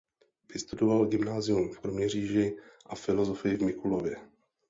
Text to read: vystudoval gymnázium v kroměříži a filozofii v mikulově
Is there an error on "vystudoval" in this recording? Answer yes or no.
no